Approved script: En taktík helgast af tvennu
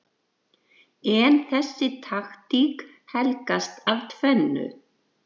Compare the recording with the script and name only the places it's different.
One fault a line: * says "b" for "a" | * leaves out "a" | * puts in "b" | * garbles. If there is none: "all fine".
* puts in "þessi"